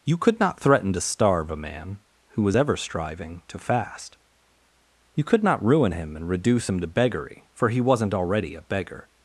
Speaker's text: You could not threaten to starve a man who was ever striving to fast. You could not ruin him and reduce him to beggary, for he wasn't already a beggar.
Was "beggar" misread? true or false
false